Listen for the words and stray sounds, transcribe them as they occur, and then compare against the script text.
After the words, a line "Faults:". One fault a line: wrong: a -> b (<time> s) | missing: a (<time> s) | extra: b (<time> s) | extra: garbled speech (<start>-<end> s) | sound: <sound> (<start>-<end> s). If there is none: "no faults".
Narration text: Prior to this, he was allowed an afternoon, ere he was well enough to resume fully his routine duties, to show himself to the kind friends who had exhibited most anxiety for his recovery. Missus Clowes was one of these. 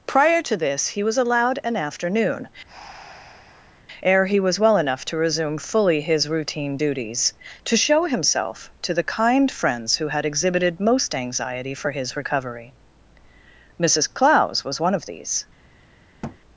Prior to this, he was allowed an afternoon, ere he was well enough to resume fully his routine duties, to show himself to the kind friends who had exhibited most anxiety for his recovery. Missus Clowes was one of these.
Faults:
sound: breath (2.7-3.8 s)
sound: thud (16.2-16.4 s)